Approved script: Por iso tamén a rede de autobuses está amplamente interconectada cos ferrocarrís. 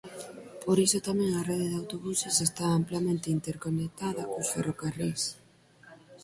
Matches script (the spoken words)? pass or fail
pass